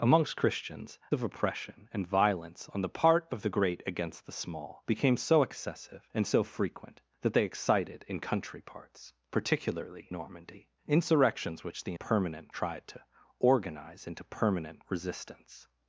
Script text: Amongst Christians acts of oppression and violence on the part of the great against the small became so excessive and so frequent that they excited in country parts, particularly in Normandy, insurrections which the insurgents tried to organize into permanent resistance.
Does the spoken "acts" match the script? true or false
false